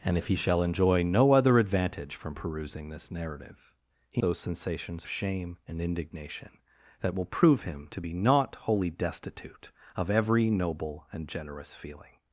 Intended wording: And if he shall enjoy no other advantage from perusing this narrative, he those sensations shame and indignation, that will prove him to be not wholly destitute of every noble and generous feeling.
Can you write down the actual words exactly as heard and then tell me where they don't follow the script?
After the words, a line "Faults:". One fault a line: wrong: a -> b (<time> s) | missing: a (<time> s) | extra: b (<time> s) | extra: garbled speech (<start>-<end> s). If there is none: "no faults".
And if he shall enjoy no other advantage from perusing this narrative, he those sensations shame and indignation, that will prove him to be not wholly destitute of every noble and generous feeling.
Faults:
no faults